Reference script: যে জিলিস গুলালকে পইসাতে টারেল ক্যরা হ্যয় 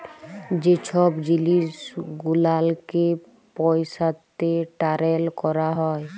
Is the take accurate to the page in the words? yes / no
no